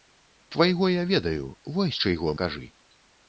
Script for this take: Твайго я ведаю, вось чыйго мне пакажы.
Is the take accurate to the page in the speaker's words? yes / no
no